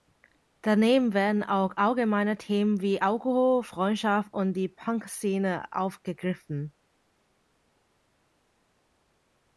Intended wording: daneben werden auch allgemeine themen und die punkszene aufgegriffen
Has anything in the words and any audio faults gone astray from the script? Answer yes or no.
yes